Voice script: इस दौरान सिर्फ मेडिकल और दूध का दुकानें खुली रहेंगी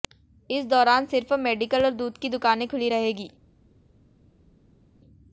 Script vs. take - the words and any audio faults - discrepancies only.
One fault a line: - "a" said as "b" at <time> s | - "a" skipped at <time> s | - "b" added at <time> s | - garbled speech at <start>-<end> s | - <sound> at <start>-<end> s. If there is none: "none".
- "का" said as "की" at 2.2 s